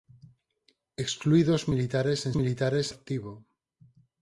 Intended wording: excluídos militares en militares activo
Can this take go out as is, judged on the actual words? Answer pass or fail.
pass